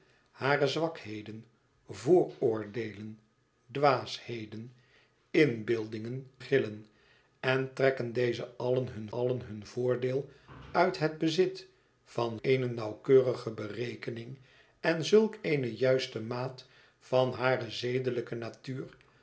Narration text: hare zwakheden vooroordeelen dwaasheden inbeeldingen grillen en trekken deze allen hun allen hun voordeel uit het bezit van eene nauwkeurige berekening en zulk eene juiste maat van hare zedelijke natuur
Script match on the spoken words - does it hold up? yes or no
yes